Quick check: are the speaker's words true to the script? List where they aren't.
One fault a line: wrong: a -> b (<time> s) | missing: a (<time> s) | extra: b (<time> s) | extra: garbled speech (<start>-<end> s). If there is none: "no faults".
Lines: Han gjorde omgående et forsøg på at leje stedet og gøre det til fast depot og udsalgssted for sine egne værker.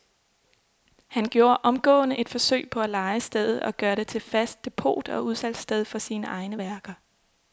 no faults